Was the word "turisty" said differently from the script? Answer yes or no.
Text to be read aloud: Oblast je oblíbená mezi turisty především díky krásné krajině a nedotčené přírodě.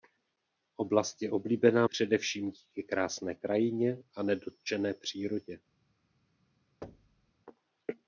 yes